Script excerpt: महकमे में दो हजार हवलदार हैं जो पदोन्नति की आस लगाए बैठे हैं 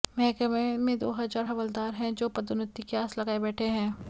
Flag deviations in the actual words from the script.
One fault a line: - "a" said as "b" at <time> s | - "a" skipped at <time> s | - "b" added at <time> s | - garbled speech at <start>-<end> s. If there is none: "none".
none